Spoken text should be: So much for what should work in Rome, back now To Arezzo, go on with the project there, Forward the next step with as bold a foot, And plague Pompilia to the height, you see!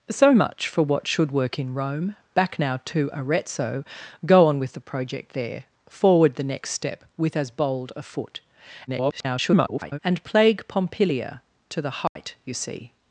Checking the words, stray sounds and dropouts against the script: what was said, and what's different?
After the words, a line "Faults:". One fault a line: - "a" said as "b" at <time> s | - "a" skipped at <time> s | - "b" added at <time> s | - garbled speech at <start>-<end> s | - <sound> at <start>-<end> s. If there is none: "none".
So much for what should work in Rome, back now To Arezzo, go on with the project there, Forward the next step with as bold a foot, [garbled] And plague Pompilia to the height, you see!
Faults:
- garbled speech at 8.9-10.0 s
- dropout at 12.1-12.2 s